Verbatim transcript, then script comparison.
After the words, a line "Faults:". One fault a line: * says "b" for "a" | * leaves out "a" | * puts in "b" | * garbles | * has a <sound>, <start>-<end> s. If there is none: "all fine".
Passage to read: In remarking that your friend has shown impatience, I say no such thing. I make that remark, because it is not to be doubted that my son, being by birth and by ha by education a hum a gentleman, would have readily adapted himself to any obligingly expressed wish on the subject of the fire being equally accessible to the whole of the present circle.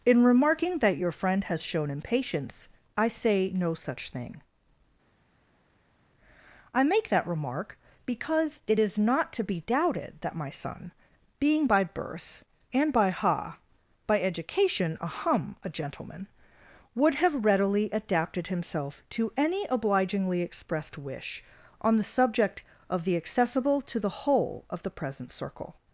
In remarking that your friend has shown impatience, I say no such thing. I make that remark, because it is not to be doubted that my son, being by birth and by ha by education a hum a gentleman, would have readily adapted himself to any obligingly expressed wish on the subject of the accessible to the whole of the present circle.
Faults:
* leaves out "fire being equally"